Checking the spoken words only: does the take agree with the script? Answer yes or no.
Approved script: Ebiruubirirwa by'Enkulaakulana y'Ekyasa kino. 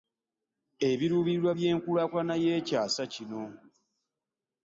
yes